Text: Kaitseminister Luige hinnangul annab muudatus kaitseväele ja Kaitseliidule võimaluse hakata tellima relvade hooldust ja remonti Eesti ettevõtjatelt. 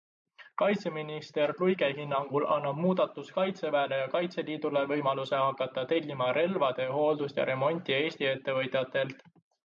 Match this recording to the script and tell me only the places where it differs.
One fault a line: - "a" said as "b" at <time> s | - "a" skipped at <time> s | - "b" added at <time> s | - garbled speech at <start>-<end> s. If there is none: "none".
none